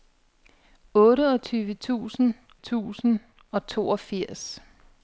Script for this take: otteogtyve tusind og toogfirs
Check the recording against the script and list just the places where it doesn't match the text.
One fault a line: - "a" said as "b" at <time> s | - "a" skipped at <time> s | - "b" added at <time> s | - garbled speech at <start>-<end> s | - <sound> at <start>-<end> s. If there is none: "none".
- "tusind" added at 2.5 s